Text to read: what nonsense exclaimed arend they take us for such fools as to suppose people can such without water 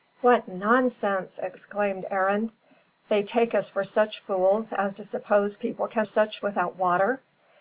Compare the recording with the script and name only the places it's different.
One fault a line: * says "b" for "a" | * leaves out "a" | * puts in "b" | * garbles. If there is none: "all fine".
all fine